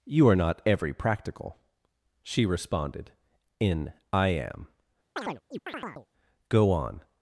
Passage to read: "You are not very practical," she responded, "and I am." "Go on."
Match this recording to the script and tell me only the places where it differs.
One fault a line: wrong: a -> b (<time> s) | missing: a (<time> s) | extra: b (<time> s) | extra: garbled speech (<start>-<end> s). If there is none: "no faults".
wrong: very -> every (0.7 s)
wrong: and -> in (3.6 s)